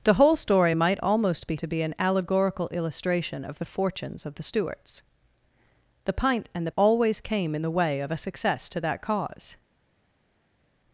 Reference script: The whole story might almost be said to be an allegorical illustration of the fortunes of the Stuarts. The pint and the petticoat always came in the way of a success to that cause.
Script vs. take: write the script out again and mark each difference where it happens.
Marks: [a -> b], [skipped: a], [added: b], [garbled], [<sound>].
The whole story might almost be [skipped: said] to be an allegorical illustration of the fortunes of the Stuarts. The pint and the [skipped: petticoat] always came in the way of a success to that cause.